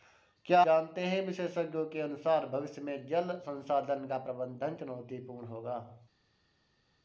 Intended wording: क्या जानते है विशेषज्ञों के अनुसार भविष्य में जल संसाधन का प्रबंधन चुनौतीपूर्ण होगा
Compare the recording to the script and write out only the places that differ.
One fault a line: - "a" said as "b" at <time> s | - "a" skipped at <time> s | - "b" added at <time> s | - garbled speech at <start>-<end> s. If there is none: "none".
none